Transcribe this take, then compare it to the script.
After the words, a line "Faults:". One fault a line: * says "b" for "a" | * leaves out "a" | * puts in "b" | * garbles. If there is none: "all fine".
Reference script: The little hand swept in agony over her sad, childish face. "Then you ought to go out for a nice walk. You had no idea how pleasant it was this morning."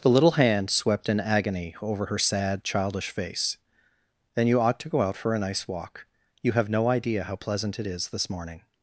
The little hand swept in agony over her sad, childish face. "Then you ought to go out for a nice walk. You have no idea how pleasant it is this morning."
Faults:
* says "have" for "had"
* says "is" for "was"